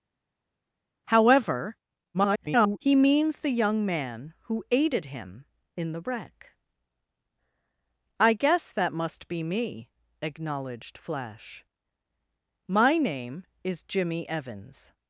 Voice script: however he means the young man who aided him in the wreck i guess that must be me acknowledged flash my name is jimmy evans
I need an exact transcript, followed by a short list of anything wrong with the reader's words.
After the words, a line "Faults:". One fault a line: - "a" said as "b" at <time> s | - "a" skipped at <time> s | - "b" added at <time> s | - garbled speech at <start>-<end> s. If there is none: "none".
however [garbled] he means the young man who aided him in the wreck i guess that must be me acknowledged flash my name is jimmy evans
Faults:
- garbled speech at 2.1-2.8 s